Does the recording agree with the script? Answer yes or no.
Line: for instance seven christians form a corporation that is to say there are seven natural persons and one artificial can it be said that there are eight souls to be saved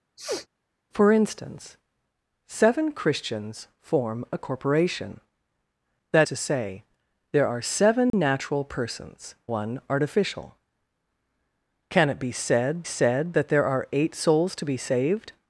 no